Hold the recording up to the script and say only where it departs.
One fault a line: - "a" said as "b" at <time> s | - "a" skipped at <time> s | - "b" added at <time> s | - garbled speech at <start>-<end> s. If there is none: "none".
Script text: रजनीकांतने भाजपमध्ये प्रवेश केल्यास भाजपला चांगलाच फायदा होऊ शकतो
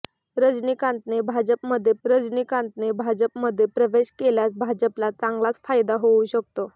- "रजनीकांतने भाजपमध्ये" added at 2.0 s